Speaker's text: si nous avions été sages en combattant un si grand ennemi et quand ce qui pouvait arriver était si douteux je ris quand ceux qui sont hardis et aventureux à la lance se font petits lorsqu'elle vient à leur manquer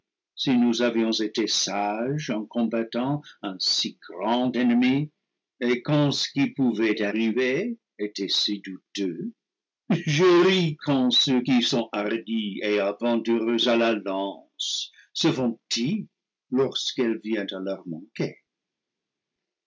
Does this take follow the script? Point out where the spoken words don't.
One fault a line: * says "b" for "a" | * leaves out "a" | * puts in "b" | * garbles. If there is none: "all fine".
all fine